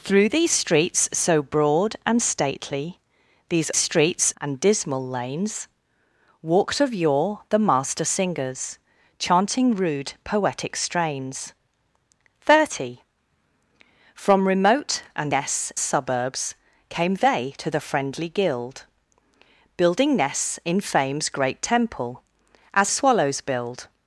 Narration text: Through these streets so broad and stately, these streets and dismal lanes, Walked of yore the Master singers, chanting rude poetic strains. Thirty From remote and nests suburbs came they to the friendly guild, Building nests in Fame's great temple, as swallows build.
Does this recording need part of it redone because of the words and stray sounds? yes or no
no